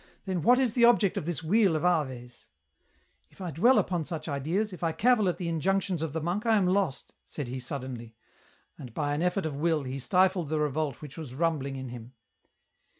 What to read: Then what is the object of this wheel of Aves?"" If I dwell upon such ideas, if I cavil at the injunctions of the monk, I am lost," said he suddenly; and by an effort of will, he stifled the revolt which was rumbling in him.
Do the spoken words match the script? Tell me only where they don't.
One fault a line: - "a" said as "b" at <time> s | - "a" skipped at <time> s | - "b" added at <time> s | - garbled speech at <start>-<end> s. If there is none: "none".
none